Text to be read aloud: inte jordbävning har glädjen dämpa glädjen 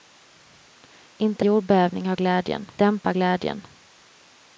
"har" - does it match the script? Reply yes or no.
yes